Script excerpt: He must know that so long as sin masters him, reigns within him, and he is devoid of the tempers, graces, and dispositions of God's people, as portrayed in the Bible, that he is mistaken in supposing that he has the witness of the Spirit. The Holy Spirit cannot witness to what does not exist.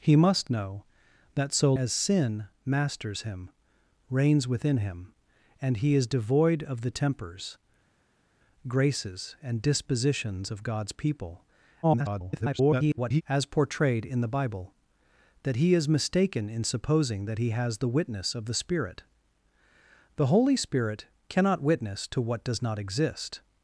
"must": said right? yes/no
yes